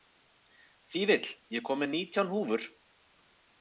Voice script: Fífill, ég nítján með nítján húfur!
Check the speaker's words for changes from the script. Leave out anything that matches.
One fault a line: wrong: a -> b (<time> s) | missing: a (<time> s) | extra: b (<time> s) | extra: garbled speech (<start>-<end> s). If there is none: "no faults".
wrong: nítján -> kom (1.7 s)